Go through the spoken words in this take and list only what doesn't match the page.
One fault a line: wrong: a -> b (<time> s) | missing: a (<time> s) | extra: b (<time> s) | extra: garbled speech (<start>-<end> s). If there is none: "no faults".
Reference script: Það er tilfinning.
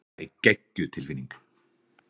extra: geggjuð (0.5 s)